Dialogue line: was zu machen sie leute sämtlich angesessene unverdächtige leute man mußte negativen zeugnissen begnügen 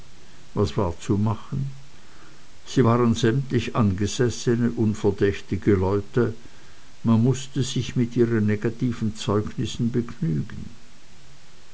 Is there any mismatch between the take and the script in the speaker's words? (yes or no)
yes